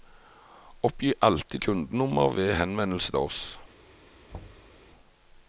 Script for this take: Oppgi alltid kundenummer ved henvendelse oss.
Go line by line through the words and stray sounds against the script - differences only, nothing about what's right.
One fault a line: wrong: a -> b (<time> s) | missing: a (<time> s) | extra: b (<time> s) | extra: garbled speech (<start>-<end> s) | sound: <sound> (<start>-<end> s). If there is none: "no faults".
sound: thud (4.3-4.8 s)